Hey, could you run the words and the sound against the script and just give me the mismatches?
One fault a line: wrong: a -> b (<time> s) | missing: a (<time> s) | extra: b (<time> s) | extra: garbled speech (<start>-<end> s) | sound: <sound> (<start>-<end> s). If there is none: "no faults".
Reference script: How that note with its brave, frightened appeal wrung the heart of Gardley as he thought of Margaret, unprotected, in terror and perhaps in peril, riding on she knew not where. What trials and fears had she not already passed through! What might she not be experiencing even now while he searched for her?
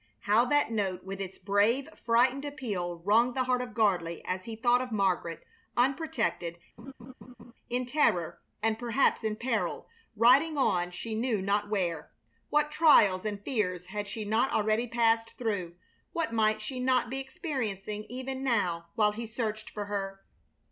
sound: laugh (6.8-7.5 s)